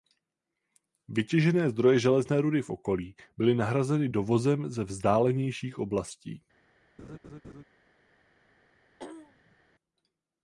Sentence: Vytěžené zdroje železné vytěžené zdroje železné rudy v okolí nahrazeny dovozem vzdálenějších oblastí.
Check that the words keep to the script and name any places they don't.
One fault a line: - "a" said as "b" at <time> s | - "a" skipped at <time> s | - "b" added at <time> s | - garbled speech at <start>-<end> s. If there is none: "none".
- "vytěžené zdroje železné" skipped at 2.4 s
- "byly" added at 3.4 s
- "ze" added at 4.7 s